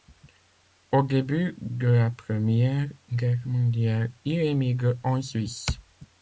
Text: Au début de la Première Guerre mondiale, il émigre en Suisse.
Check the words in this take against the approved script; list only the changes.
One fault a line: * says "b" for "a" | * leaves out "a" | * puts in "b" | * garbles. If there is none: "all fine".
all fine